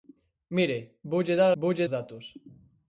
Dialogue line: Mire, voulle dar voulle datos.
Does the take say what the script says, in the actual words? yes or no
yes